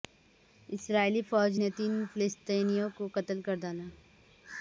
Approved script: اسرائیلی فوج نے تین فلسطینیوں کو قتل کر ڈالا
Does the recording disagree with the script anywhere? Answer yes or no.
no